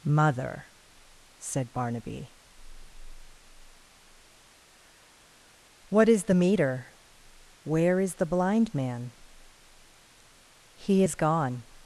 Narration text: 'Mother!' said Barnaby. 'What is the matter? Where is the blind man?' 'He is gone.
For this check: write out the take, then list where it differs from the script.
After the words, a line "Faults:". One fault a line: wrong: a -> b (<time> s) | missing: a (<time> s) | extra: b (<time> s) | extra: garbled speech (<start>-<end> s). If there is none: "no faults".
'Mother!' said Barnaby. 'What is the meter? Where is the blind man?' 'He is gone.
Faults:
wrong: matter -> meter (6.3 s)